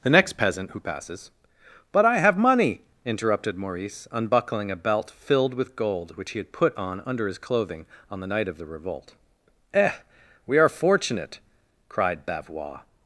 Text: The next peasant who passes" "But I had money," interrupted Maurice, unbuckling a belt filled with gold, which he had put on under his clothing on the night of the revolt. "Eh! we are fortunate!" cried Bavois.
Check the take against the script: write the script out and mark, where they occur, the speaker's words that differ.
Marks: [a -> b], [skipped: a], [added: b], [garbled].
The next peasant who passes" "But I [had -> have] money," interrupted Maurice, unbuckling a belt filled with gold, which he had put on under his clothing on the night of the revolt. "Eh! we are fortunate!" cried Bavois.